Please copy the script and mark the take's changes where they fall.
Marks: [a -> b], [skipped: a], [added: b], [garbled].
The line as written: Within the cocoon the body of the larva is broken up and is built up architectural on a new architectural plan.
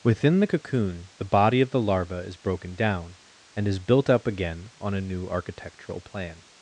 Within the cocoon the body of the larva is broken [up -> down] and is built up [architectural -> again] on a new architectural plan.